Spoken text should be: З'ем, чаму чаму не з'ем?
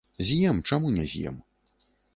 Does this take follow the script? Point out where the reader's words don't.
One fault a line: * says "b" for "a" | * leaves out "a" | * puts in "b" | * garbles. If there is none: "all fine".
* leaves out "чаму"